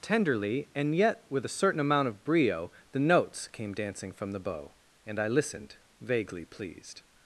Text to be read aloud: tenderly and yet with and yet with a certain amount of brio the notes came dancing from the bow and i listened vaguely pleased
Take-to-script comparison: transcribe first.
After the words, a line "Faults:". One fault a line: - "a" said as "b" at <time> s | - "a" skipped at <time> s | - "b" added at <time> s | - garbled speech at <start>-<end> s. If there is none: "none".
tenderly and yet with a certain amount of brio the notes came dancing from the bow and i listened vaguely pleased
Faults:
- "and yet with" skipped at 1.4 s